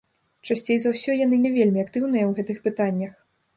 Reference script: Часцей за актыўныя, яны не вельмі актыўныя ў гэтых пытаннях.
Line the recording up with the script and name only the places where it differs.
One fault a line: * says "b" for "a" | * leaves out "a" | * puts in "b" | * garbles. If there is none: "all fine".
* says "ўсё" for "актыўныя"